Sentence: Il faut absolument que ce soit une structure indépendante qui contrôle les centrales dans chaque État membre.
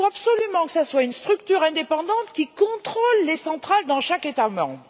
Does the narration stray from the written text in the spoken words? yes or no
no